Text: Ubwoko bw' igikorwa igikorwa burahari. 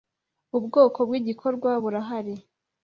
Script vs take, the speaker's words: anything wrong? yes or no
yes